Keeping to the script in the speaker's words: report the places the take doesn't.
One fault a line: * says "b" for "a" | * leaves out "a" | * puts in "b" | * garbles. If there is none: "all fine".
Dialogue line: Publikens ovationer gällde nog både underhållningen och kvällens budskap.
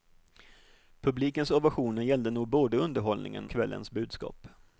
* leaves out "och"